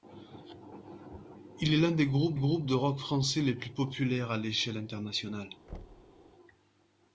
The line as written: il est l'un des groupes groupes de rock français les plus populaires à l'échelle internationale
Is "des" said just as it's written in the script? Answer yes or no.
yes